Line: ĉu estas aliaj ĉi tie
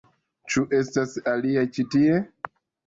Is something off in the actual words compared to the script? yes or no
no